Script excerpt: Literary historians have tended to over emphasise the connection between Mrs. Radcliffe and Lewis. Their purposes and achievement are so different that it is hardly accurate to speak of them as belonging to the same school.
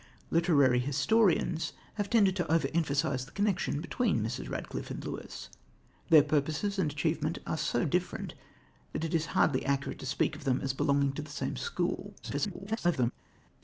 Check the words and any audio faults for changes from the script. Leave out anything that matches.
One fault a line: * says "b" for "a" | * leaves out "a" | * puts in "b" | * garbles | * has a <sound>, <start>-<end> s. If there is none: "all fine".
* garbles